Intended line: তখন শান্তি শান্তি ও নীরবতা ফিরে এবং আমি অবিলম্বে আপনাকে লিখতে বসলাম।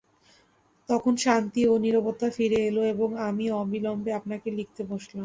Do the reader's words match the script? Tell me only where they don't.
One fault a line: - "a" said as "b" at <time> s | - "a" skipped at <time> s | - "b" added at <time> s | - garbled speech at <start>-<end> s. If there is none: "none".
- "শান্তি" skipped at 1.6 s
- "এল" added at 2.7 s